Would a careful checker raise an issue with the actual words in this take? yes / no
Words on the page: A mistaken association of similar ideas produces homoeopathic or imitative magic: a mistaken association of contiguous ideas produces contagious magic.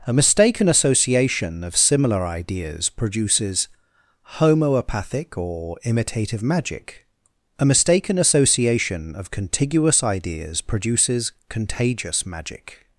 no